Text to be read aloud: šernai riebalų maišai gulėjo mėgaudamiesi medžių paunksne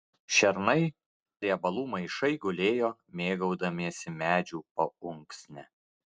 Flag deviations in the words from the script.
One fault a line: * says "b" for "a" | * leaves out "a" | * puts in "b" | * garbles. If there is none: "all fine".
all fine